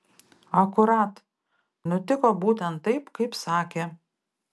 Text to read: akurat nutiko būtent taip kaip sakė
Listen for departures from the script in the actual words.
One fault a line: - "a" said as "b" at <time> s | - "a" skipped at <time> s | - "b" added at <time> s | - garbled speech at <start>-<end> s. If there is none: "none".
none